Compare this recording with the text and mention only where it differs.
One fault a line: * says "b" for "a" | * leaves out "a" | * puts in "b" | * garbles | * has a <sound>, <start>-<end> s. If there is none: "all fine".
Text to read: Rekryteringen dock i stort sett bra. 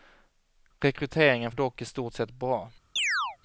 * has a chirp, 3.0-3.4 s